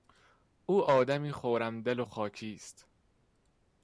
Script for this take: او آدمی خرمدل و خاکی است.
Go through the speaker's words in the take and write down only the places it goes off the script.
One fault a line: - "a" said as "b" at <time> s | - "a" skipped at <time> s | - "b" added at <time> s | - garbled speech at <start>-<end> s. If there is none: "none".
none